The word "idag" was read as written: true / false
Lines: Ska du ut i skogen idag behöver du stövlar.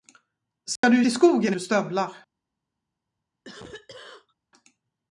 false